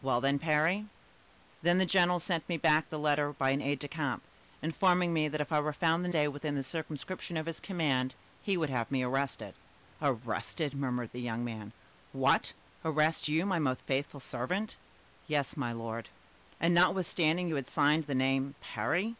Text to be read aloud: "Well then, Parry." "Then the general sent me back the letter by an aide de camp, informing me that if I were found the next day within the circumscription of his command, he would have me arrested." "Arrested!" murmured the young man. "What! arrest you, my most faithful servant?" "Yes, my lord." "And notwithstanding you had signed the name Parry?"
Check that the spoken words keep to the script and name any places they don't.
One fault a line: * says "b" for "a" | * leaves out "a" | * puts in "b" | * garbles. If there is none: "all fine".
* leaves out "next"